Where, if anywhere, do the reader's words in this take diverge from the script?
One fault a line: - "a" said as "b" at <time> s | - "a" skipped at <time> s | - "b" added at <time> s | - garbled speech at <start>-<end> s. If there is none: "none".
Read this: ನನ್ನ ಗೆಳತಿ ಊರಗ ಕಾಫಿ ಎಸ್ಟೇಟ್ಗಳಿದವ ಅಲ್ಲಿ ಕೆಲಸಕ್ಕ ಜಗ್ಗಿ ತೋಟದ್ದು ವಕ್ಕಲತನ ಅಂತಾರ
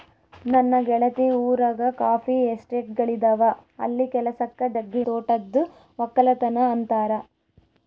none